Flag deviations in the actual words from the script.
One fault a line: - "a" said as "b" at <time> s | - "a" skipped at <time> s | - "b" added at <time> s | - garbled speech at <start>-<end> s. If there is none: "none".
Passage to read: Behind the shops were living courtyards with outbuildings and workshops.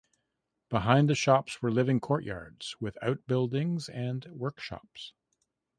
none